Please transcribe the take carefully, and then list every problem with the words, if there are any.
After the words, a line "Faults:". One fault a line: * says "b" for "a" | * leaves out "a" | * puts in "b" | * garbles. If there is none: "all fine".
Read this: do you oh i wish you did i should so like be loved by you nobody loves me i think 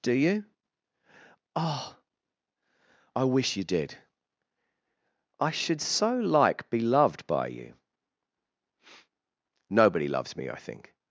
do you oh i wish you did i should so like be loved by you nobody loves me i think
Faults:
all fine